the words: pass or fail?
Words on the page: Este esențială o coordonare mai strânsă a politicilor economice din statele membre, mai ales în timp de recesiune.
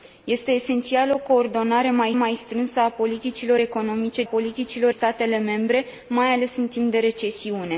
fail